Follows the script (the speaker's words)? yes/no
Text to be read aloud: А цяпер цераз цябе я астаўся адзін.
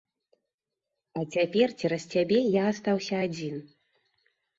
yes